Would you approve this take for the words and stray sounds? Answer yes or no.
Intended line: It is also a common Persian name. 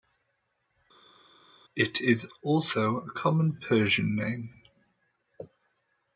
yes